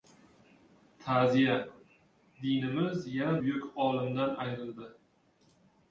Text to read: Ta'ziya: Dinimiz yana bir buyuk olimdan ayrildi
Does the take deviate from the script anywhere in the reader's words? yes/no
yes